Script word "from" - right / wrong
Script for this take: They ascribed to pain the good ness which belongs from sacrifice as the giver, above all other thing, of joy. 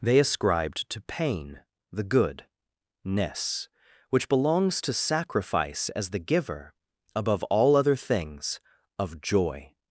wrong